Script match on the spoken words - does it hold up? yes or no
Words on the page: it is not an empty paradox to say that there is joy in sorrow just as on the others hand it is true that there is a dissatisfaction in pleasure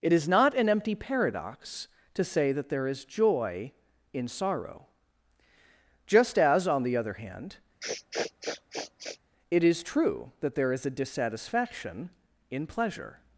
no